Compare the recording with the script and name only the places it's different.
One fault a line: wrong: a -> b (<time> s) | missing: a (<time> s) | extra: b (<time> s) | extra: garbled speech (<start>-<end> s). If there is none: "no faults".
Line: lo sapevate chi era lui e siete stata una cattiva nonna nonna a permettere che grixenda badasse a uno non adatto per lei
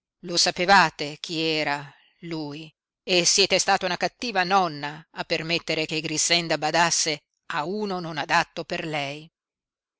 missing: nonna (5.0 s)